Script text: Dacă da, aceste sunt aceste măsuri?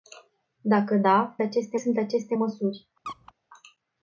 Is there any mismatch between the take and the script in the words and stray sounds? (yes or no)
yes